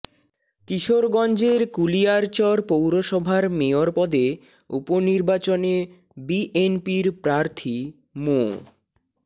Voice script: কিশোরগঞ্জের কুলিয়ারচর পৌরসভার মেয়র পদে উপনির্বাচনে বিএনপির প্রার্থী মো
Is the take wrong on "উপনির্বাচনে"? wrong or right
right